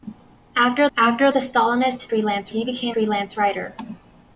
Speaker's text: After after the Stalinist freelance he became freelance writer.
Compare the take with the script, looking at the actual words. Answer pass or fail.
pass